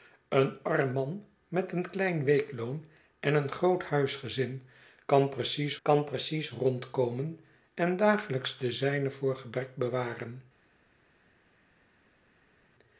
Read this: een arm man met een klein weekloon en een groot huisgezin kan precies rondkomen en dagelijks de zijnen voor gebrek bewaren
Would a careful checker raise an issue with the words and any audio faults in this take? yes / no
yes